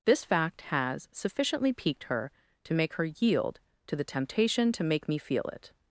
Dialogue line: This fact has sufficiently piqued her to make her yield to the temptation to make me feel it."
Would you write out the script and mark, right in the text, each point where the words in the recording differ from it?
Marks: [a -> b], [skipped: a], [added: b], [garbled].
This fact has sufficiently piqued her to make her yield to the temptation to make me feel it."